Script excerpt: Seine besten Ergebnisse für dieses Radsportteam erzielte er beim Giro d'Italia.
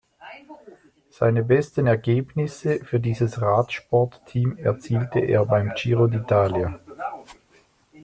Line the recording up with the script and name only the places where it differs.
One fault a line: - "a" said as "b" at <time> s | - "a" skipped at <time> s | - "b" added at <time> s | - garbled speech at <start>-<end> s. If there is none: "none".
none